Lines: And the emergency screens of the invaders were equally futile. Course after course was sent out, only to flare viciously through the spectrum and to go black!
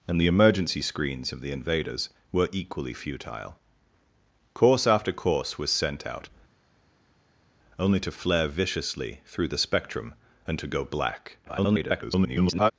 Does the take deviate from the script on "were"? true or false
false